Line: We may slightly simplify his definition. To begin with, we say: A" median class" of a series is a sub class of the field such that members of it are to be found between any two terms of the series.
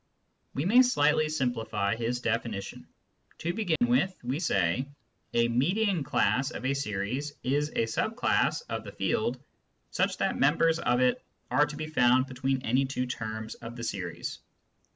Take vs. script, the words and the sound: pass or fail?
fail